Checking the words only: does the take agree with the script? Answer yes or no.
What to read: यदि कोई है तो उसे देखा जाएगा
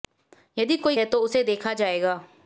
yes